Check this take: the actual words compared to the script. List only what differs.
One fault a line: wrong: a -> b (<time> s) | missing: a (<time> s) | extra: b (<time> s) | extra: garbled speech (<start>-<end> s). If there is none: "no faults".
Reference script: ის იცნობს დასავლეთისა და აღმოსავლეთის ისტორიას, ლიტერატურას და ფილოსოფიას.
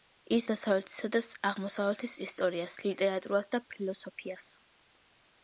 missing: იცნობს (0.5 s)